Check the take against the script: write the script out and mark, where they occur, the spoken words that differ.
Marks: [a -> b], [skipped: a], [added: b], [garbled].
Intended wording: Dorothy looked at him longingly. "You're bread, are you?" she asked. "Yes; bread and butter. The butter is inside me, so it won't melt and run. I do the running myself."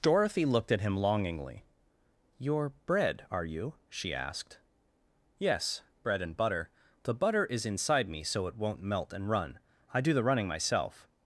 Dorothy looked at him longingly. "You're bread, are you?" she asked. "Yes; bread and butter. The butter is inside me, so it won't melt and run. I do the running myself."